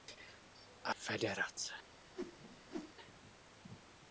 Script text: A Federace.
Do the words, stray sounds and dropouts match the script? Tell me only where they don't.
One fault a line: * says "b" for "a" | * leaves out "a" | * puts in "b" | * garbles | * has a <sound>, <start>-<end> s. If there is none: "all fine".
* has a whoosh, 2.2-2.9 s